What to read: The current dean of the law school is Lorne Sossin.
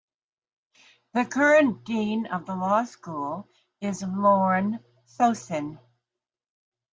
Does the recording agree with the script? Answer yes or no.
yes